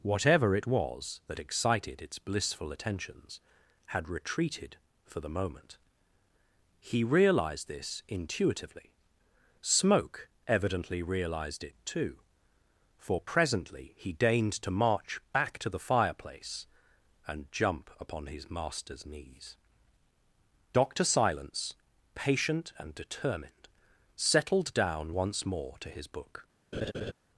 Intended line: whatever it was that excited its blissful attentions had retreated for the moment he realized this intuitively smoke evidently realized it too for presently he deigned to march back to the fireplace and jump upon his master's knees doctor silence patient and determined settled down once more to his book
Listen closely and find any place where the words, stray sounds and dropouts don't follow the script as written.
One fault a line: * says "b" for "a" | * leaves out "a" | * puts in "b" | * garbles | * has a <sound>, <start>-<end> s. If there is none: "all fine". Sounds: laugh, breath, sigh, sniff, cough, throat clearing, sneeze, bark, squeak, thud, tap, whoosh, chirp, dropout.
* has a laugh, 26.7-27.1 s